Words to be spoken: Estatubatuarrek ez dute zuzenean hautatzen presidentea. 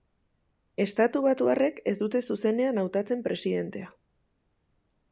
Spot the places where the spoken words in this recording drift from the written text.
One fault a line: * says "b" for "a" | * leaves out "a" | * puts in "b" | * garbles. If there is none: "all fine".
all fine